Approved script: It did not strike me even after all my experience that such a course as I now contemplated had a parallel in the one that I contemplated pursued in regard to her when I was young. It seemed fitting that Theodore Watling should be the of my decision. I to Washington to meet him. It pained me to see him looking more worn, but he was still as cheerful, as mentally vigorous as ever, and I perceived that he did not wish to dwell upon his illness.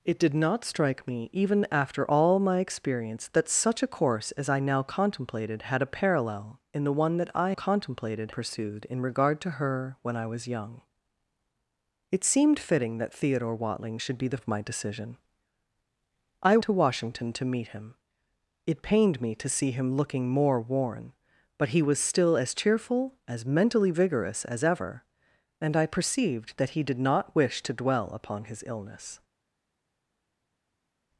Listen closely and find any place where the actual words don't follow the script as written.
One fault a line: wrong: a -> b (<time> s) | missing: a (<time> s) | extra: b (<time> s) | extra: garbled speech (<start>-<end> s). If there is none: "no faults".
no faults